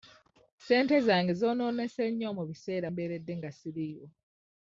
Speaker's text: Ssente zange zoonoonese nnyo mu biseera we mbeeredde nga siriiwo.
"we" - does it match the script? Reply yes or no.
no